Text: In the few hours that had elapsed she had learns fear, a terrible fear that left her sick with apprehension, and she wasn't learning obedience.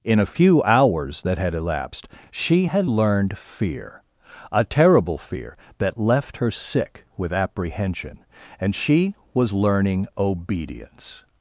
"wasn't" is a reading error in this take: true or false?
true